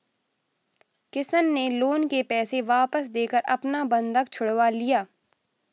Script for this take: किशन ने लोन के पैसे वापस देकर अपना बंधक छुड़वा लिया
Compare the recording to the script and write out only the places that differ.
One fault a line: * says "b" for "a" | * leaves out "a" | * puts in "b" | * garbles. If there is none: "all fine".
all fine